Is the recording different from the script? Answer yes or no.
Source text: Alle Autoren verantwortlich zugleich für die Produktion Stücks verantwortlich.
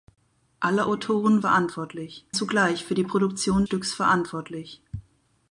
no